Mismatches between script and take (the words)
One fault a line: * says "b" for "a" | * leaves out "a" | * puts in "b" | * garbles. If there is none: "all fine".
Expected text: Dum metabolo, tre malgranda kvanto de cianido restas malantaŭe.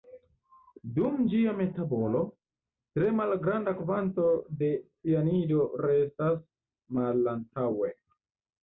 * puts in "ĝia"